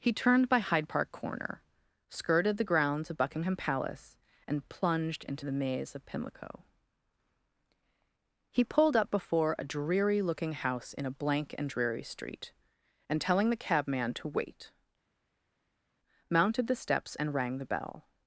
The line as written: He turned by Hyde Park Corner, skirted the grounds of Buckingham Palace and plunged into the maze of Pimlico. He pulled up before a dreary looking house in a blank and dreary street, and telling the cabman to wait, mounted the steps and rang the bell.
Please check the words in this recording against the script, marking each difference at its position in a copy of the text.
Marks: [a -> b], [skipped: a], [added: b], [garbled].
He turned by Hyde Park Corner, skirted the grounds of Buckingham Palace and plunged into the maze of Pimlico. He pulled up before a dreary looking house in a blank and dreary street, and telling the cabman to wait, mounted the steps and rang the bell.